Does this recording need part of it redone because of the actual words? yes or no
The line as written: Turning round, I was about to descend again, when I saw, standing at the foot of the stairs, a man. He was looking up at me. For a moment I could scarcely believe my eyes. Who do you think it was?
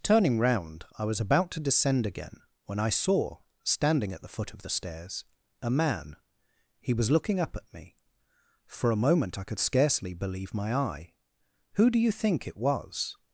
yes